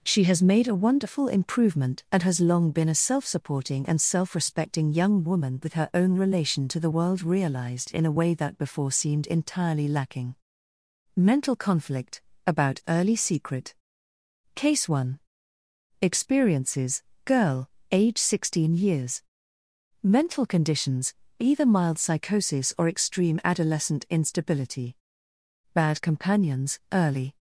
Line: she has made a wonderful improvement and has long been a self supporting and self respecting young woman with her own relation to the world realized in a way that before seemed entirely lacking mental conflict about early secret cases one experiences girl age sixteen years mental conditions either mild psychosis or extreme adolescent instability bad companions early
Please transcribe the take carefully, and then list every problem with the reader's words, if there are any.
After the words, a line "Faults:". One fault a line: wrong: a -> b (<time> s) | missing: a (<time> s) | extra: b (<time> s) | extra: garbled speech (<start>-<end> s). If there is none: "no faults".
she has made a wonderful improvement and has long been a self supporting and self respecting young woman with her own relation to the world realized in a way that before seemed entirely lacking mental conflict about early secret case one experiences girl age sixteen years mental conditions either mild psychosis or extreme adolescent instability bad companions early
Faults:
wrong: cases -> case (14.5 s)